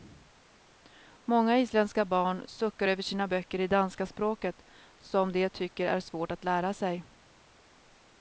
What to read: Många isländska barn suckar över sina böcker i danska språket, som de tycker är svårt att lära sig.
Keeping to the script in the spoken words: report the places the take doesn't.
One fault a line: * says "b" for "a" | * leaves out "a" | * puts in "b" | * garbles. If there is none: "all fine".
all fine